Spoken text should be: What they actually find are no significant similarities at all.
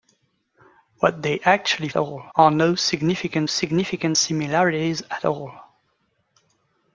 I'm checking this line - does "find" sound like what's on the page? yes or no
no